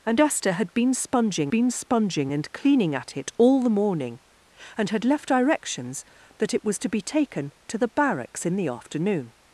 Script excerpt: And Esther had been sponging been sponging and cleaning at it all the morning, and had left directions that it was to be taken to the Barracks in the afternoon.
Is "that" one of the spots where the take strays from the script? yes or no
no